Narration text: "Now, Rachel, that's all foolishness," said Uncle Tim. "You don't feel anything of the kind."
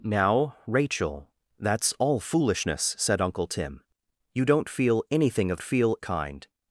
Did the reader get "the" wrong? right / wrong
wrong